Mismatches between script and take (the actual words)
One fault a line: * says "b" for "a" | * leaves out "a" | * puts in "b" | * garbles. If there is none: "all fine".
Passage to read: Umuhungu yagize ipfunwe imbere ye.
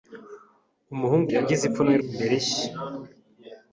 all fine